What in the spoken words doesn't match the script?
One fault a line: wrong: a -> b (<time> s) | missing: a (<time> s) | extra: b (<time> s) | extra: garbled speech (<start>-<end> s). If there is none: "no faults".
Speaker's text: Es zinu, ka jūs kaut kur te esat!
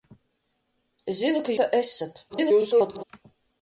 missing: jūs kaut kur (1.6 s)
extra: garbled speech (2.3-3.0 s)